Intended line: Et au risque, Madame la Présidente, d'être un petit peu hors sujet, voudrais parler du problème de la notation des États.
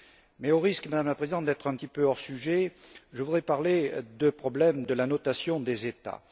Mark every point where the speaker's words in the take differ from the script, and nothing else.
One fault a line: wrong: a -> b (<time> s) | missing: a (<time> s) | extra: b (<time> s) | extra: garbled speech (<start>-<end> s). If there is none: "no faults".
wrong: Et -> Mais (0.4 s)
extra: je (3.1 s)